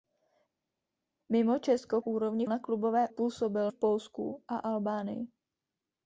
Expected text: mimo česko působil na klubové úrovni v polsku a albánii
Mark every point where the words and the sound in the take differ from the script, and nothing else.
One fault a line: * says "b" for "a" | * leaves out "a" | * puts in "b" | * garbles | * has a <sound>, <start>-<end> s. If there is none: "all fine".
* says "úrovni" for "působil"
* says "působil" for "úrovni"